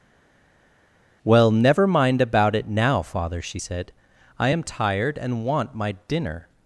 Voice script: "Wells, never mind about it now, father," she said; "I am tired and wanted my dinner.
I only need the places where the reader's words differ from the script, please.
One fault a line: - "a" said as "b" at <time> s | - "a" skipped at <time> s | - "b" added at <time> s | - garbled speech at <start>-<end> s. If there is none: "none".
- "Wells" said as "Well" at 1.2 s
- "wanted" said as "want" at 5.4 s